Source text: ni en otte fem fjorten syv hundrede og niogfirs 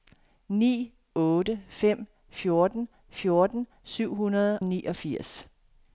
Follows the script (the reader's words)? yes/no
no